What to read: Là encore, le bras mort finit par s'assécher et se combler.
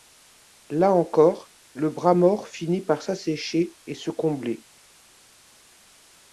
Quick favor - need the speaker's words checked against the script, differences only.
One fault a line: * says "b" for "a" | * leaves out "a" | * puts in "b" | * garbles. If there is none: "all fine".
all fine